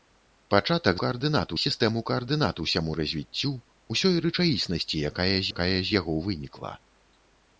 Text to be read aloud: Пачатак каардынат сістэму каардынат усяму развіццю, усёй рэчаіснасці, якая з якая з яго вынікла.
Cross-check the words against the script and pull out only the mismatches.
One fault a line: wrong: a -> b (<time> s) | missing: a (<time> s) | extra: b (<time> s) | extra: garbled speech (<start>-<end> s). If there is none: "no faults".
no faults